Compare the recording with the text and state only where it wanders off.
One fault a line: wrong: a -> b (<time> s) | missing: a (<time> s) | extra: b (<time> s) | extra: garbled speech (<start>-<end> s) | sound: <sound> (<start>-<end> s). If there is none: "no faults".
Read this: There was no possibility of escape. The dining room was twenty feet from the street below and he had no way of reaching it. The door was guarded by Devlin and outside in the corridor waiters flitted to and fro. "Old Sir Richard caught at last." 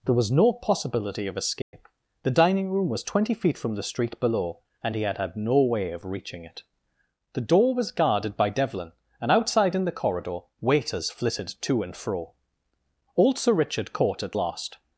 sound: dropout (1.6-1.7 s)
extra: had (5.2 s)